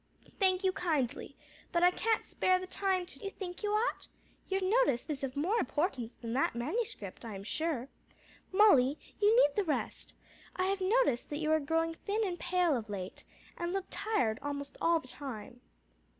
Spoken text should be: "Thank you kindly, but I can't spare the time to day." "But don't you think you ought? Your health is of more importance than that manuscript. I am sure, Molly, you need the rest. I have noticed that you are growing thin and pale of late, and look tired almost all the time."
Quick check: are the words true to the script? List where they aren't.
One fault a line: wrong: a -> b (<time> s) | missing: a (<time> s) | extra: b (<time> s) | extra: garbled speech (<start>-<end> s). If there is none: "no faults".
missing: day But don't (3.2 s)
wrong: health -> noticed (4.6 s)